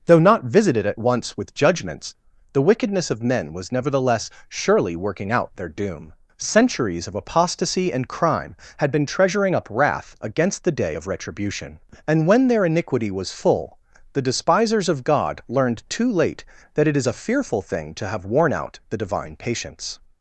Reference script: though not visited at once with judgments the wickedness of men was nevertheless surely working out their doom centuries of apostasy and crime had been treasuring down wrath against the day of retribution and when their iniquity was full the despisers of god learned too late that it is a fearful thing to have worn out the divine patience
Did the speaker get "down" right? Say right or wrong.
wrong